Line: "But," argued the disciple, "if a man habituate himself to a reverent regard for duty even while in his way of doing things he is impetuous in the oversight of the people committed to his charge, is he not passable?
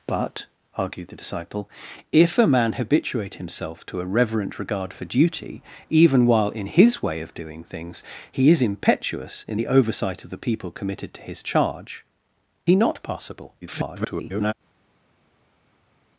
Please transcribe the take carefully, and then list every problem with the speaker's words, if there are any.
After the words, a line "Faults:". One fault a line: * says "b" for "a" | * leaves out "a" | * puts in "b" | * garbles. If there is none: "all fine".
"But," argued the disciple, "if a man habituate himself to a reverent regard for duty even while in his way of doing things he is impetuous in the oversight of the people committed to his charge, he not passable? [garbled]
Faults:
* leaves out "is"
* garbles